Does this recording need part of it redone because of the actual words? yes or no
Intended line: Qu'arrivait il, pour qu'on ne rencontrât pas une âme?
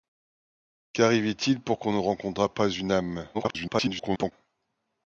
yes